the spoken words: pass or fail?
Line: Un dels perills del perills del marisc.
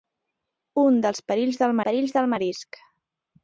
pass